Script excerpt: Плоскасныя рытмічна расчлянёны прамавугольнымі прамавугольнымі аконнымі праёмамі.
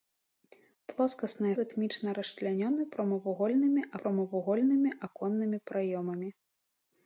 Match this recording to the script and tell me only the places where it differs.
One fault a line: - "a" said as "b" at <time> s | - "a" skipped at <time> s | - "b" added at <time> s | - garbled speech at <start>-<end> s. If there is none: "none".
none